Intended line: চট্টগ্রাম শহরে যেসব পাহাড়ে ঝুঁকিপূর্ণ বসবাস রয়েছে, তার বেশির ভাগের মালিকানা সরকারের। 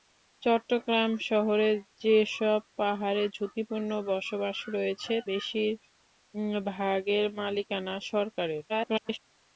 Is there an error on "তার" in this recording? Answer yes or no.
yes